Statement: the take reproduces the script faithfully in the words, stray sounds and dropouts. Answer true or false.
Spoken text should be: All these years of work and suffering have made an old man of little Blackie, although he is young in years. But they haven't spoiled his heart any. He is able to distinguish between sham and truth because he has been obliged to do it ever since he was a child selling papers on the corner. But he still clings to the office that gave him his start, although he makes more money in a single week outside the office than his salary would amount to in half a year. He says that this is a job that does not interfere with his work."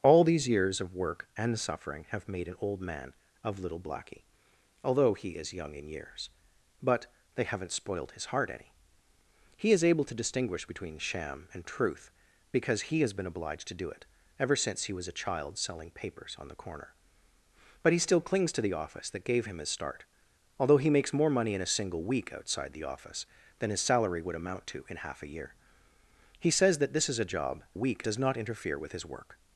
false